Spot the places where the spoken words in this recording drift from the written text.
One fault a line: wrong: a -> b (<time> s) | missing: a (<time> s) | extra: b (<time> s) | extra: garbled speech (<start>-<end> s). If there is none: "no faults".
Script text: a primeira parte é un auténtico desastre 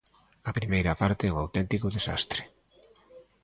no faults